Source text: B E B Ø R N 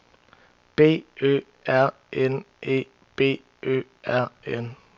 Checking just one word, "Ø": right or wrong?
right